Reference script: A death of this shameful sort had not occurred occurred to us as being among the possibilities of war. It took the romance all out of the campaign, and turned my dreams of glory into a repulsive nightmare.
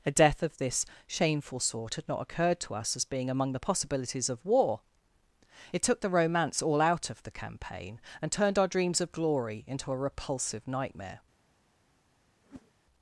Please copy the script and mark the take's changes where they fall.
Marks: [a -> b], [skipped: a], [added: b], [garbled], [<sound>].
A death of this shameful sort had not occurred [skipped: occurred] to us as being among the possibilities of war. It took the romance all out of the campaign, and turned [my -> our] dreams of glory into a repulsive nightmare. [whoosh]